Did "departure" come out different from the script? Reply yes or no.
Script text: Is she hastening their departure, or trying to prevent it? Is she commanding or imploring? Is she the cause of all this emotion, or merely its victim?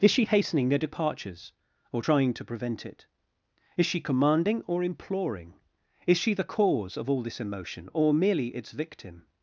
yes